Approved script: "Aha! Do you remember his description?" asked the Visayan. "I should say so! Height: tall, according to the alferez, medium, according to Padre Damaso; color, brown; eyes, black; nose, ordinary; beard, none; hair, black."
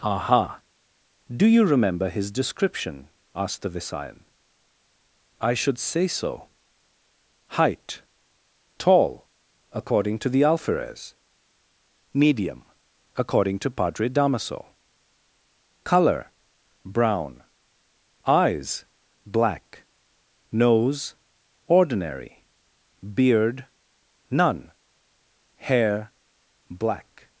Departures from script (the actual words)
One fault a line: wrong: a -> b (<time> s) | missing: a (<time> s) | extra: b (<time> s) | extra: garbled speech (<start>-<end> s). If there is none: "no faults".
no faults